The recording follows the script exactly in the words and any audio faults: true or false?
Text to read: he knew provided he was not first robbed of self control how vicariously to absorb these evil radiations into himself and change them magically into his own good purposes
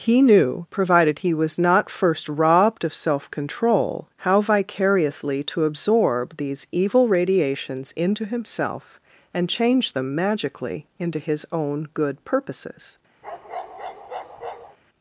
false